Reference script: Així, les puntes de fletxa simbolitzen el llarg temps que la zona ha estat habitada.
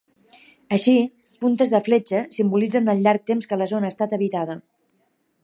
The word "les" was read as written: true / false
false